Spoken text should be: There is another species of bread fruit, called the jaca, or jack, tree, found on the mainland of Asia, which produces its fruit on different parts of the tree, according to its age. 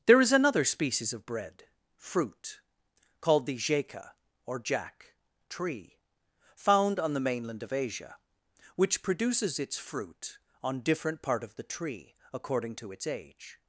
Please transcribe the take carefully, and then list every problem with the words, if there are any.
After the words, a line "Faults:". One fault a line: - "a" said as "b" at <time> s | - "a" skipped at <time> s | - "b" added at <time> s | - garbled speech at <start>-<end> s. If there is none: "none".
There is another species of bread fruit, called the jaca, or jack, tree, found on the mainland of Asia, which produces its fruit on different part of the tree, according to its age.
Faults:
- "parts" said as "part" at 11.2 s